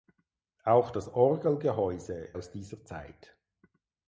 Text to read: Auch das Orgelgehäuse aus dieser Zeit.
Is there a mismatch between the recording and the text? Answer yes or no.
no